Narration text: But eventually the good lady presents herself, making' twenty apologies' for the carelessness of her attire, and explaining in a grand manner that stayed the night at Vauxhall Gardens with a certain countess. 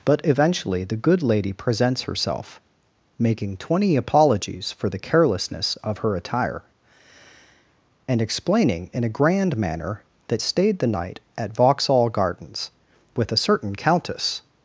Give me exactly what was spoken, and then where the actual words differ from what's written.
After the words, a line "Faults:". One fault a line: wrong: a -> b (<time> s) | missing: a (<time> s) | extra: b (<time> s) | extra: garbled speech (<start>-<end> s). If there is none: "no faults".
But eventually the good lady presents herself, making' twenty apologies' for the carelessness of her attire, and explaining in a grand manner that stayed the night at Vauxhall Gardens with a certain countess.
Faults:
no faults